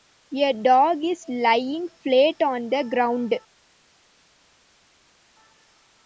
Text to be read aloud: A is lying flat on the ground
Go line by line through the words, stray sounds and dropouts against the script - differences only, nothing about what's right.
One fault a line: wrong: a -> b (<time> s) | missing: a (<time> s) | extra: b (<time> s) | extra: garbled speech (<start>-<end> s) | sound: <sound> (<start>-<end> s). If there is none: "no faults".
extra: dog (0.5 s)